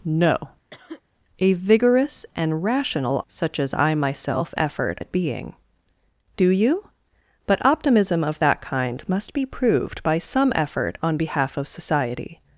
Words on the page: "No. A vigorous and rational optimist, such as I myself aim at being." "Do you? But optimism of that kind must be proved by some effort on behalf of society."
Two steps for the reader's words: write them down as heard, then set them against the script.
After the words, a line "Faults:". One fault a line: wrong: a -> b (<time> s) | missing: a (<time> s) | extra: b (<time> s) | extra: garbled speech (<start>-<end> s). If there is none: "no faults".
"No. A vigorous and rational such as I myself effort at being." "Do you? But optimism of that kind must be proved by some effort on behalf of society."
Faults:
missing: optimist (3.2 s)
wrong: aim -> effort (4.6 s)